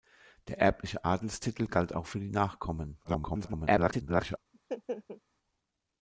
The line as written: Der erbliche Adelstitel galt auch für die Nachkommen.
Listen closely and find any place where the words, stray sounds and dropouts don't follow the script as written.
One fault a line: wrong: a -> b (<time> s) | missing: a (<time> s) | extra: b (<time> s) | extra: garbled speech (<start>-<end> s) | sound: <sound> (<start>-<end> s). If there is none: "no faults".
extra: garbled speech (3.0-4.4 s)
sound: laugh (4.5-5.2 s)